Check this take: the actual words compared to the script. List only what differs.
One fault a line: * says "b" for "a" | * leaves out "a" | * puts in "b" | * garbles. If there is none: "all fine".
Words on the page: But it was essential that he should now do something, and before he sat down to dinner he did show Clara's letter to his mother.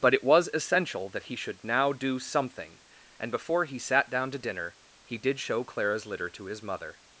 * says "litter" for "letter"